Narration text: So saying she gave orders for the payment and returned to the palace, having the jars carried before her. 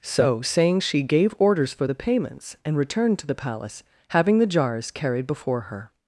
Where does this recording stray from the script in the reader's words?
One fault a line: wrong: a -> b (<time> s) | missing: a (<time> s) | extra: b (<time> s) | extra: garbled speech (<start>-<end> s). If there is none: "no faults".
wrong: payment -> payments (1.9 s)